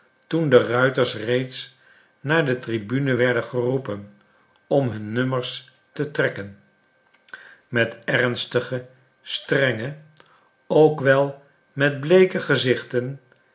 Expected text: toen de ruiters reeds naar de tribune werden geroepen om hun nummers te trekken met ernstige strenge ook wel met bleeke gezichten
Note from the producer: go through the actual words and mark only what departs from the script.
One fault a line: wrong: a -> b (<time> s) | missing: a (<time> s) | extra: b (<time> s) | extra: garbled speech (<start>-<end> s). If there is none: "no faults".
no faults